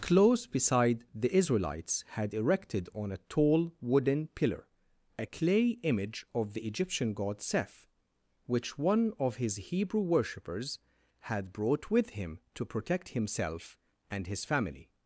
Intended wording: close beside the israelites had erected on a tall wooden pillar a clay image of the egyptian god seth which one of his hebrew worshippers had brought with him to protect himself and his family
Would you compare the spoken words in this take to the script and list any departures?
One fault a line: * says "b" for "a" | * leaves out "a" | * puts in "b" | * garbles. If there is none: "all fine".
all fine